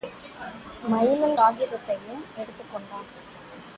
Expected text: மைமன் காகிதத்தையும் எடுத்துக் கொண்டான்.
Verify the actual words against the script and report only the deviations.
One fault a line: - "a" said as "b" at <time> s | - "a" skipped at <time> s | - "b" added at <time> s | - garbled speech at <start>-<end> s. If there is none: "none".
none